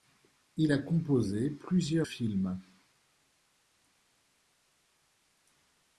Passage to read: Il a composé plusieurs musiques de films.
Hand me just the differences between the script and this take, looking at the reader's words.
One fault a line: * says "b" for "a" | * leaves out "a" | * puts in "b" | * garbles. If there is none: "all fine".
* leaves out "musiques de"